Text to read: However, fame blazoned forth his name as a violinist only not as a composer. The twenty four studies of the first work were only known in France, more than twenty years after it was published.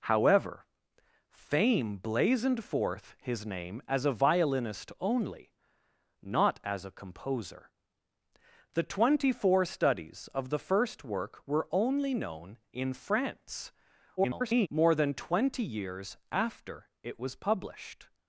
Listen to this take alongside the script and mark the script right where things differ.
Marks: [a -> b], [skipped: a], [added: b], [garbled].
However, fame blazoned forth his name as a violinist only not as a composer. The twenty four studies of the first work were only known in France, [garbled] more than twenty years after it was published.